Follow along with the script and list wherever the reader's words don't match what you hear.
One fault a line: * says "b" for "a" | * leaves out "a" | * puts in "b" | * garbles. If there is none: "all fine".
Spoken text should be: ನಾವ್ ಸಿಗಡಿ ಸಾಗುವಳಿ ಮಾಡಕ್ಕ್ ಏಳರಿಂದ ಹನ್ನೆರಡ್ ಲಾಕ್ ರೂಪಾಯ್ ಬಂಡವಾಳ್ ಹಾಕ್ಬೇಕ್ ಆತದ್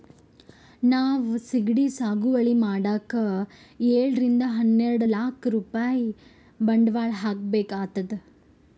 all fine